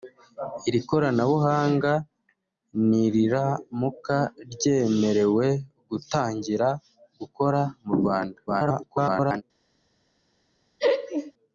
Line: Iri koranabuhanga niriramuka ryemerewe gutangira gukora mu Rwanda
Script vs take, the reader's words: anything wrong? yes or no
yes